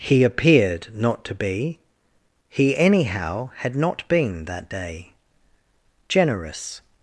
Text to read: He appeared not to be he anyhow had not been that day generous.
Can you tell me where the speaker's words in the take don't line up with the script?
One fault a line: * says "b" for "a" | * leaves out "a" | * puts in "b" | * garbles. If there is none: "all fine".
all fine